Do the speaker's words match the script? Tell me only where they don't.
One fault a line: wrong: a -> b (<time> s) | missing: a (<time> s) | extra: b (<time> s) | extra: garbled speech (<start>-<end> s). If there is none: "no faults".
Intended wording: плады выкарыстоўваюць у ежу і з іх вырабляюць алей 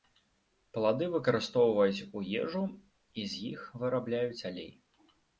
no faults